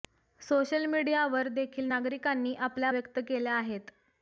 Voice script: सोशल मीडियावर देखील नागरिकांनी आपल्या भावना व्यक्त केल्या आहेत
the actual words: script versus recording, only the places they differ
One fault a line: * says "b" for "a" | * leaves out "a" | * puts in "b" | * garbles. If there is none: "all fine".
* leaves out "भावना"